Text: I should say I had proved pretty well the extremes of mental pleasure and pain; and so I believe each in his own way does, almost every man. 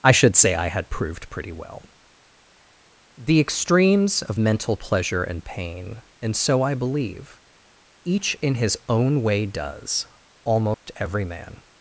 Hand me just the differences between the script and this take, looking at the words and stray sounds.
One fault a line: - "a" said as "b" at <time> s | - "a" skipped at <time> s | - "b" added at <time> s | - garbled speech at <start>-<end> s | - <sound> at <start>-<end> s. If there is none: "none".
- dropout at 10.7-10.9 s